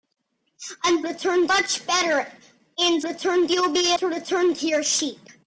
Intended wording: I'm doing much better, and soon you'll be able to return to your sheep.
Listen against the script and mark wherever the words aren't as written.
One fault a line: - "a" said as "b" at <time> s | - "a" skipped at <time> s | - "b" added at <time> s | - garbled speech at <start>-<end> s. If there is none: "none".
- "doing" said as "return" at 1.0 s
- "soon" said as "return" at 3.0 s
- "able" skipped at 3.9 s